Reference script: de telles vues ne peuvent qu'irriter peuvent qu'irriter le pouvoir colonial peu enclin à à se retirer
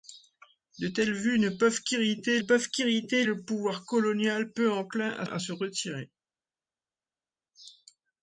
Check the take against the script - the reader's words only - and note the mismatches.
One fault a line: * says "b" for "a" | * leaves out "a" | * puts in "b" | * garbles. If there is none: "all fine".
all fine